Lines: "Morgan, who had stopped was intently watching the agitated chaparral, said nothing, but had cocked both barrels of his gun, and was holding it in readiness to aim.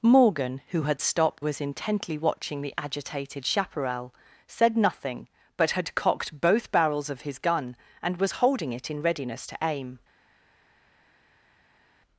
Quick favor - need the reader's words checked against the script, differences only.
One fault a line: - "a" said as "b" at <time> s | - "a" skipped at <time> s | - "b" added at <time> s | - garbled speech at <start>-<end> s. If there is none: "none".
none